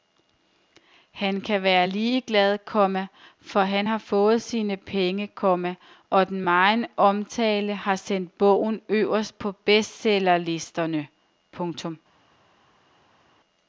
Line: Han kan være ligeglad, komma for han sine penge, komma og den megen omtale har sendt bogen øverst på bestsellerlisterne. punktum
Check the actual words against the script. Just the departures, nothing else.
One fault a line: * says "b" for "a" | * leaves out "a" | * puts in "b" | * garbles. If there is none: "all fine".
* puts in "har fået"